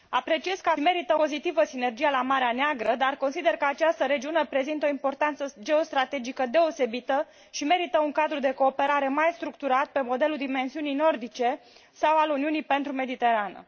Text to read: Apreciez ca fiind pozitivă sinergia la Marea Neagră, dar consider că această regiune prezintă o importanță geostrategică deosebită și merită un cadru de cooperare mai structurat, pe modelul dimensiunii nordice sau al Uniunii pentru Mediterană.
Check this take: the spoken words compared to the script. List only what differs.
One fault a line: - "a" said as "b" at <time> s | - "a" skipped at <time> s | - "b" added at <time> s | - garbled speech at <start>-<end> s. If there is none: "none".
- "fiind" said as "merită" at 0.8 s